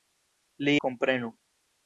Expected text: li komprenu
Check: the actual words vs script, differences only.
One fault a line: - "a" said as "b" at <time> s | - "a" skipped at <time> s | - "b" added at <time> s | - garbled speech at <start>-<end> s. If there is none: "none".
none